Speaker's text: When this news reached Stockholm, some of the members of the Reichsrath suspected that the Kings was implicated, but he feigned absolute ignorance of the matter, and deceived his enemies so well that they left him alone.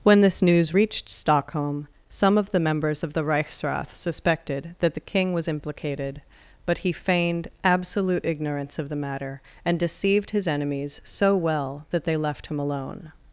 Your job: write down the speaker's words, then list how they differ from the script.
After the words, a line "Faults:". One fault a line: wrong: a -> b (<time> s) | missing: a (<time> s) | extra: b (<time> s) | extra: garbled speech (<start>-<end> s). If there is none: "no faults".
When this news reached Stockholm, some of the members of the Reichsrath suspected that the King was implicated, but he feigned absolute ignorance of the matter, and deceived his enemies so well that they left him alone.
Faults:
wrong: Kings -> King (5.0 s)